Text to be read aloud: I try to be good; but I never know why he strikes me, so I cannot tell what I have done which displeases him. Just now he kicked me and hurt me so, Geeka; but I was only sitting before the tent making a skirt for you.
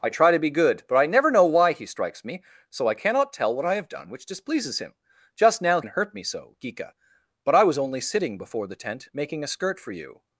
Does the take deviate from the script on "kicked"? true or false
true